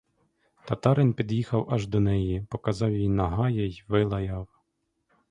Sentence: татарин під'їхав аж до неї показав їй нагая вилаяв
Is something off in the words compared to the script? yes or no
yes